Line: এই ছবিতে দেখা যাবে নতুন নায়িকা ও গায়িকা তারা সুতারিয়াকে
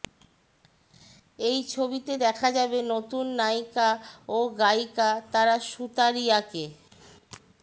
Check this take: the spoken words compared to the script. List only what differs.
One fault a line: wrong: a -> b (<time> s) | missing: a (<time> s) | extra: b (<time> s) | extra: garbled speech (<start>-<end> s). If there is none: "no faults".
no faults